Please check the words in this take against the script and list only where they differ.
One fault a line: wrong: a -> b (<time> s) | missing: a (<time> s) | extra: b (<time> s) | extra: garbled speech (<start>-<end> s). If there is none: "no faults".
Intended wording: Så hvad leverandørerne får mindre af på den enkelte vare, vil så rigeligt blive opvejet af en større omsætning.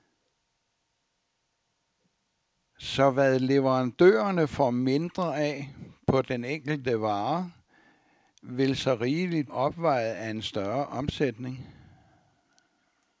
missing: blive (9.5 s)